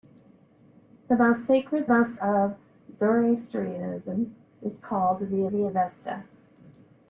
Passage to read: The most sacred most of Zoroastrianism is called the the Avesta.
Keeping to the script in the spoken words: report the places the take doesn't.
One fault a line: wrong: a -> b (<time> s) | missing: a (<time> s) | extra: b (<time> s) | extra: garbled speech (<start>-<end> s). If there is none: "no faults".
no faults